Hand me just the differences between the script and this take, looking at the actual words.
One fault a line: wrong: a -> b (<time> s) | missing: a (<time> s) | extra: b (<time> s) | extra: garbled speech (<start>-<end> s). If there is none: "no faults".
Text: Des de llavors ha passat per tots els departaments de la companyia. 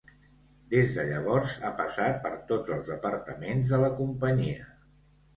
no faults